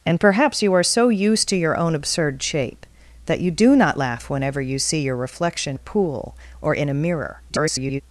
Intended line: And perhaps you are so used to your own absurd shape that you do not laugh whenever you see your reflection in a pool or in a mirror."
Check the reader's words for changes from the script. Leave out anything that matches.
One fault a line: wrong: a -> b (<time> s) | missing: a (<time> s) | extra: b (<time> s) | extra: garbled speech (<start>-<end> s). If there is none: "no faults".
missing: in (5.8 s)
extra: garbled speech (7.5-8.0 s)